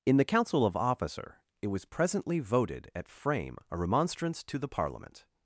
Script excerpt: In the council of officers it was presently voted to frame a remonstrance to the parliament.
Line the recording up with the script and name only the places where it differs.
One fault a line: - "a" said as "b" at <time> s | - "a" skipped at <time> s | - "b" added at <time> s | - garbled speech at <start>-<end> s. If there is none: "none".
- "officers" said as "officer" at 0.8 s
- "to" said as "at" at 3.0 s